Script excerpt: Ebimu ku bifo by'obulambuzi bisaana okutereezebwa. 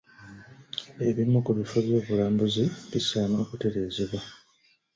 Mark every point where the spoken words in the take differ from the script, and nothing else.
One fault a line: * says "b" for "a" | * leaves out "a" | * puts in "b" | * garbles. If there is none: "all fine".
all fine